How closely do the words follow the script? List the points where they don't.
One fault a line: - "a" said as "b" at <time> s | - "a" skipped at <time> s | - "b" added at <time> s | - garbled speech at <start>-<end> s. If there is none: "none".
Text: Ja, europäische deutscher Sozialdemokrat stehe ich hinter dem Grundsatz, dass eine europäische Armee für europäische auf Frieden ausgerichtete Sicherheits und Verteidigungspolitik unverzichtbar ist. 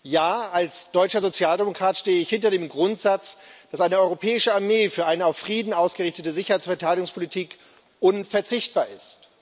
- "europäische" said as "als" at 0.5 s
- "europäische" said as "eine" at 5.1 s